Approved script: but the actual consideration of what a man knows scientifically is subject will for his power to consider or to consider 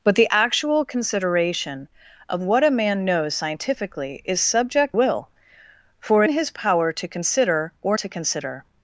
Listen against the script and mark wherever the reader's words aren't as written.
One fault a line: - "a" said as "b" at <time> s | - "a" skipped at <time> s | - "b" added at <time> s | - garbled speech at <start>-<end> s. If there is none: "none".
none